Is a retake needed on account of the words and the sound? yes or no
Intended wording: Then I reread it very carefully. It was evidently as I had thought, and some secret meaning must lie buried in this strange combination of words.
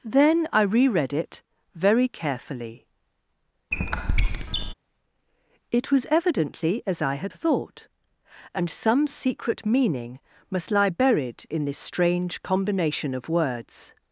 yes